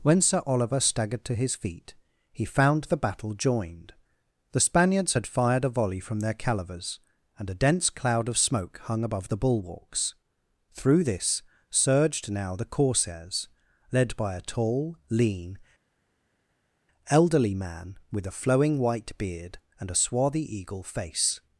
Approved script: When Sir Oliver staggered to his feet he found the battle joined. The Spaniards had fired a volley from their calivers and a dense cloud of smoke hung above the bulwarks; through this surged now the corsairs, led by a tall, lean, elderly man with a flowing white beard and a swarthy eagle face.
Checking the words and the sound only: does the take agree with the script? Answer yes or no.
yes